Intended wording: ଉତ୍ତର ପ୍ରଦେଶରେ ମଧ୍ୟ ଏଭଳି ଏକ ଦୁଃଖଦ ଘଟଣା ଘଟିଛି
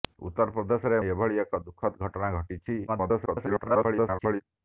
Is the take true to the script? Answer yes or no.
no